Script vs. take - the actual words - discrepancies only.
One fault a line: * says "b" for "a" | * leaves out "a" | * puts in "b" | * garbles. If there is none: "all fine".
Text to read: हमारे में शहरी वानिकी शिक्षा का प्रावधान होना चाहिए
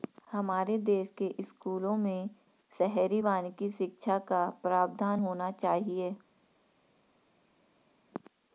* puts in "देश के स्कूलों"